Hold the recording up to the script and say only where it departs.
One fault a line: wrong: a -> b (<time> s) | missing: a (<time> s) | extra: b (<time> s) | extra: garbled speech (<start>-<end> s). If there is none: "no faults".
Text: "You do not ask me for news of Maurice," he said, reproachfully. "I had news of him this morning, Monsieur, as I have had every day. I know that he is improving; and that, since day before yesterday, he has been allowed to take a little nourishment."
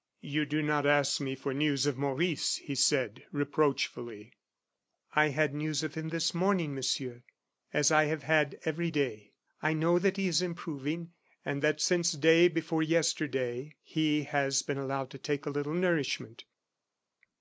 no faults